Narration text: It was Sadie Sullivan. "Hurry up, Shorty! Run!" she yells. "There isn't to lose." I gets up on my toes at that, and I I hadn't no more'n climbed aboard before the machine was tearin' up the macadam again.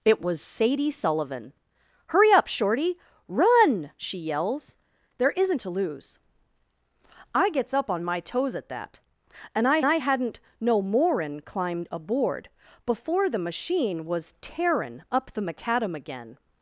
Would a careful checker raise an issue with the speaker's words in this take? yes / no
no